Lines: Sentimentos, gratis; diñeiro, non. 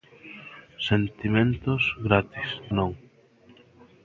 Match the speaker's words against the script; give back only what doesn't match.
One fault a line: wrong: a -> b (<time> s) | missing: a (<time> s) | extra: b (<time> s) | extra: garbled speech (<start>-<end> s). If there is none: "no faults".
missing: diñeiro (2.5 s)